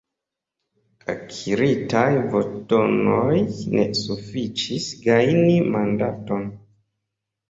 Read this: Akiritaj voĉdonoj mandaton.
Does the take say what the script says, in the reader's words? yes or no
no